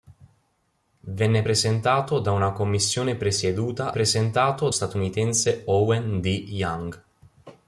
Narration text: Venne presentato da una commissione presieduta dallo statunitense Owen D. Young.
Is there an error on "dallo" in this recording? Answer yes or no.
yes